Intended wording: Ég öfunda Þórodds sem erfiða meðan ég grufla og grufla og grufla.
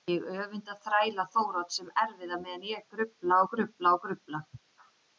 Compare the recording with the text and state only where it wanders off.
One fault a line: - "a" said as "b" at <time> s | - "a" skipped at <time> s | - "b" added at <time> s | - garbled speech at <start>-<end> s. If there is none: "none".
- "þræla" added at 0.8 s